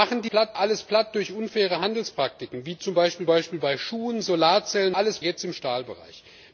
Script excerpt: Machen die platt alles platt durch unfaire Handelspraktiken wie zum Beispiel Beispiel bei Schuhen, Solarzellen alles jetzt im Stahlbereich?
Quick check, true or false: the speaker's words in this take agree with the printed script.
true